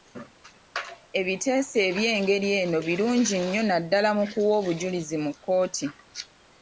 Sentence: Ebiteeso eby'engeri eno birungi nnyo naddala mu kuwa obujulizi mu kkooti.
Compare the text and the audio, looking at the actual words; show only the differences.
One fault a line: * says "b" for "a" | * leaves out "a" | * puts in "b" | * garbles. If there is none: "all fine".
all fine